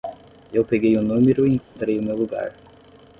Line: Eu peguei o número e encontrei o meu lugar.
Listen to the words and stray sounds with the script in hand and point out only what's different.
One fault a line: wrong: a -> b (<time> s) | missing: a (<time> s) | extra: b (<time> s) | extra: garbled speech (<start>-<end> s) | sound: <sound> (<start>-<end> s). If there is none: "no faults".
sound: dropout (1.6-1.8 s)